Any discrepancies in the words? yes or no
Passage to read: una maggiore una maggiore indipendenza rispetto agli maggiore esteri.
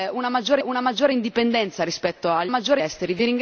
no